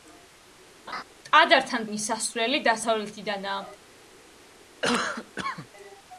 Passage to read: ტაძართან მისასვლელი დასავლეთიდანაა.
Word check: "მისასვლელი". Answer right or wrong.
right